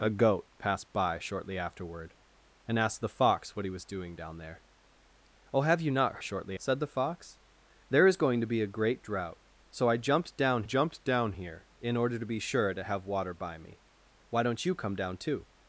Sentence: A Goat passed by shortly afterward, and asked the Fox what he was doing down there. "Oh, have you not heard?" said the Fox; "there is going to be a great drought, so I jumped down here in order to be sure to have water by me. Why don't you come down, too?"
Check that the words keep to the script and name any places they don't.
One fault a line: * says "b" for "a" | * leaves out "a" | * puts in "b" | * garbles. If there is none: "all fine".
* says "shortly" for "heard"
* puts in "jumped down"